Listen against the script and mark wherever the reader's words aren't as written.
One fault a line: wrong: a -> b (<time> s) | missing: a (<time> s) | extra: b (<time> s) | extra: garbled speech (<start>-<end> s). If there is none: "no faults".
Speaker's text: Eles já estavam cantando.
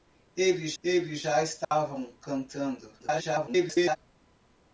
extra: eles (0.8 s)
extra: garbled speech (3.0-4.0 s)